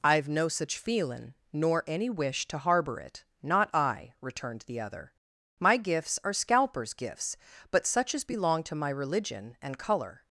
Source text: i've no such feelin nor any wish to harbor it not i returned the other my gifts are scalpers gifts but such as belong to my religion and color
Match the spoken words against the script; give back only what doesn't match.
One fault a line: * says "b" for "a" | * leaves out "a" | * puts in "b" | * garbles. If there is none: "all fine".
all fine